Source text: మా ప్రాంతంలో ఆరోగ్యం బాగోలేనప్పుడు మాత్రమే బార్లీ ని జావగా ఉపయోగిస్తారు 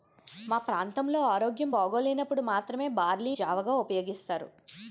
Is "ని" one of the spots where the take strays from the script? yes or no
yes